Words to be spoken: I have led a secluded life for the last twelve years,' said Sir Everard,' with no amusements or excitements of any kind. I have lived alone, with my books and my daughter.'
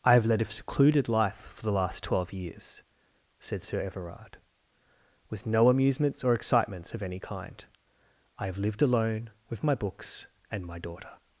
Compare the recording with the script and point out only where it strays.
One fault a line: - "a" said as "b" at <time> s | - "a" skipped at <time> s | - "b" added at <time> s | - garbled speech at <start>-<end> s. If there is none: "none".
none